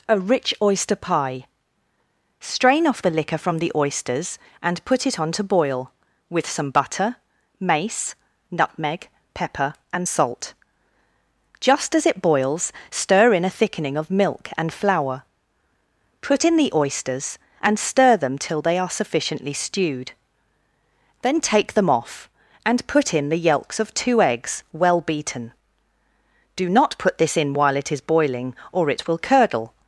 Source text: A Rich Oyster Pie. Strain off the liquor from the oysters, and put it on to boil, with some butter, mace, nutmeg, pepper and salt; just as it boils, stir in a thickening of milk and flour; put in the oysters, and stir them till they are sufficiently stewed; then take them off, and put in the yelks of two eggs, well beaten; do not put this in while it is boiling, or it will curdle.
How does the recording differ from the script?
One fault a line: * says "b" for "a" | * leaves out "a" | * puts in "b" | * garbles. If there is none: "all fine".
all fine